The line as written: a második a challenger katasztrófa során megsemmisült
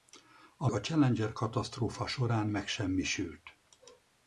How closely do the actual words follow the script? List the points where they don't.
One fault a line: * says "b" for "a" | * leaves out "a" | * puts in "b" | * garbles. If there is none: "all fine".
* leaves out "második"